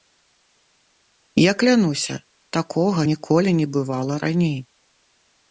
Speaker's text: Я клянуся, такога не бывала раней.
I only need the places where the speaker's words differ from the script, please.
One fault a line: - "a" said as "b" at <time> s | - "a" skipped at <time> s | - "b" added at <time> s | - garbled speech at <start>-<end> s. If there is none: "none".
- "ніколі" added at 3.1 s